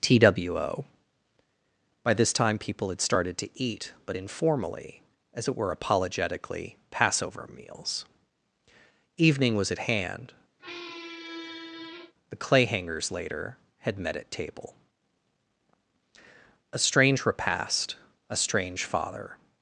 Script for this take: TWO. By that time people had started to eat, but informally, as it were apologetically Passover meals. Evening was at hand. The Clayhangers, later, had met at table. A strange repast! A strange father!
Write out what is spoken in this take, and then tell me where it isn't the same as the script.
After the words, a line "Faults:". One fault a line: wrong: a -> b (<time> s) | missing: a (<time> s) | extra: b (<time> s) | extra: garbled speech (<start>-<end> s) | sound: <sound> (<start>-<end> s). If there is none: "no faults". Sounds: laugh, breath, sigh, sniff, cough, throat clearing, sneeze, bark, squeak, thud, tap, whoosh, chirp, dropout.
TWO. By this time people had started to eat, but informally, as it were apologetically Passover meals. Evening was at hand. The Clayhangers, later, had met at table. A strange repast! A strange father!
Faults:
wrong: that -> this (2.1 s)
sound: squeak (10.6-12.1 s)